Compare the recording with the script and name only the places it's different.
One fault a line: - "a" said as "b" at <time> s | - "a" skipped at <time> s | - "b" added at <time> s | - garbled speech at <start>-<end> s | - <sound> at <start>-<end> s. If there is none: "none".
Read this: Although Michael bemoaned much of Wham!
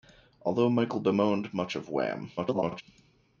- garbled speech at 2.4-2.8 s